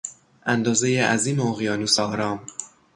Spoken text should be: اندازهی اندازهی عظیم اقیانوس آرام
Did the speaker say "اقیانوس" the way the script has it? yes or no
yes